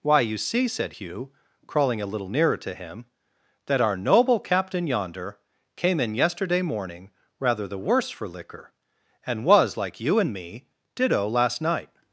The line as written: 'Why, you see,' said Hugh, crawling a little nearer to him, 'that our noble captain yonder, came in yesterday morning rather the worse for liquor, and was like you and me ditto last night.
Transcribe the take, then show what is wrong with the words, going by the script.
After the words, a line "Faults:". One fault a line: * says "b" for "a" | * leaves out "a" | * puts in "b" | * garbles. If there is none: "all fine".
'Why, you see,' said Hugh, crawling a little nearer to him, 'that our noble captain yonder, came in yesterday morning rather the worse for liquor, and was like you and me ditto last night.
Faults:
all fine